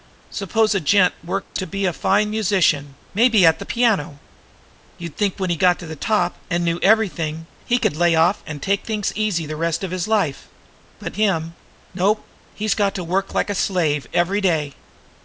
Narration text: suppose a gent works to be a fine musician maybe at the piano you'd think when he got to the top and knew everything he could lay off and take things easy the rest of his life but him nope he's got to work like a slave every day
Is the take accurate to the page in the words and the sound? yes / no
no